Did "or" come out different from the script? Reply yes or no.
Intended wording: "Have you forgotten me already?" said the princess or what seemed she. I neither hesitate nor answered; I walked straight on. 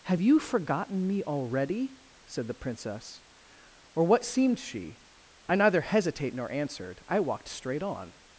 no